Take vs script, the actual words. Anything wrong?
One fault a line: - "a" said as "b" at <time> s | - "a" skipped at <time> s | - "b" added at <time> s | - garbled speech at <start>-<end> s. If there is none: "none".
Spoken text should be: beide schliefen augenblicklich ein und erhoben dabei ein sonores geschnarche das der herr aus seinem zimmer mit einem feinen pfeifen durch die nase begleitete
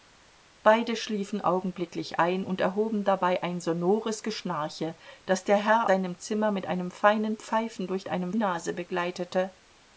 - "aus" skipped at 5.9 s
- "die" said as "einem" at 8.1 s